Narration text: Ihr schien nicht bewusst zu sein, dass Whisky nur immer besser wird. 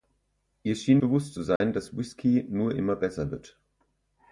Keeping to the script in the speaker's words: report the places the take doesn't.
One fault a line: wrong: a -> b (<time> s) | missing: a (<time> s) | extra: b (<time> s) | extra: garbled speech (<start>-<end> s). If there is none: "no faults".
missing: nicht (1.0 s)